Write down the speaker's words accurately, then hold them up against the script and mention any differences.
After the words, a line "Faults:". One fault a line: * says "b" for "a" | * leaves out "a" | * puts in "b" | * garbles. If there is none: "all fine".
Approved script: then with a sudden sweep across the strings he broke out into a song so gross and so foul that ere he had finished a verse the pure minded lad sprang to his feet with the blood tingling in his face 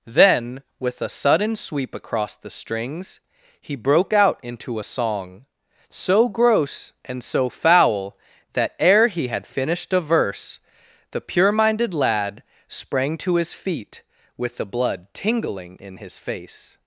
then with a sudden sweep across the strings he broke out into a song so gross and so foul that ere he had finished a verse the pure minded lad sprang to his feet with the blood tingling in his face
Faults:
all fine